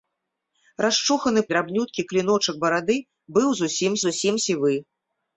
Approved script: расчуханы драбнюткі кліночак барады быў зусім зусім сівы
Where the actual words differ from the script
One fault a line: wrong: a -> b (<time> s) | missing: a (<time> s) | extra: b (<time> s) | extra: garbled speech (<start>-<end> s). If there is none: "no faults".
no faults